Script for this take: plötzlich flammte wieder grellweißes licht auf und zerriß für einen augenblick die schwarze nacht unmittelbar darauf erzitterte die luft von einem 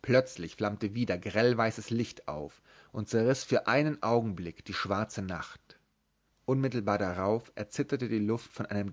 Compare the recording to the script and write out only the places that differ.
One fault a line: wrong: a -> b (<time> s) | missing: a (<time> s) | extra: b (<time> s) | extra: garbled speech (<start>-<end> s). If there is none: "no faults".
no faults